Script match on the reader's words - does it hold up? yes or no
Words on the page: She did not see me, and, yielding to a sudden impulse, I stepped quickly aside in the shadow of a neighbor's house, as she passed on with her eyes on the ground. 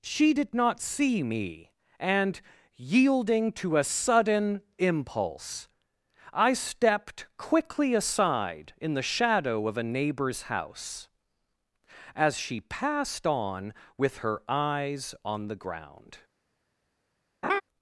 yes